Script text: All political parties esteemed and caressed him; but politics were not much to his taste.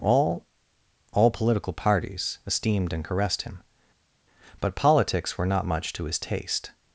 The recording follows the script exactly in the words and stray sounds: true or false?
false